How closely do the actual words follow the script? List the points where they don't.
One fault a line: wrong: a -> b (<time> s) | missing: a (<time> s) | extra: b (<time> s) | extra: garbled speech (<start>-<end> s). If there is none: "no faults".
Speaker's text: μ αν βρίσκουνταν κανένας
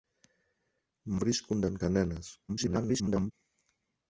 missing: αν (1.2 s)
extra: garbled speech (2.5-3.3 s)